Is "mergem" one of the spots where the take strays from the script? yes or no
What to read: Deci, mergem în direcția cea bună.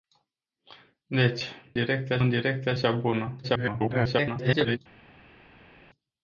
yes